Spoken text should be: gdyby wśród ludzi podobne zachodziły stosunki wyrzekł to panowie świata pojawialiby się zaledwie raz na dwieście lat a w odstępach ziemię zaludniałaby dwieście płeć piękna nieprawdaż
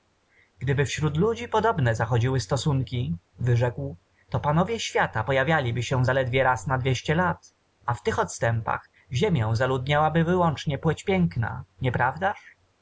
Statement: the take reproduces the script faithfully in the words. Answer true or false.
false